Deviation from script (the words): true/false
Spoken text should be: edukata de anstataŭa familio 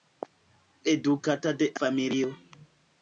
true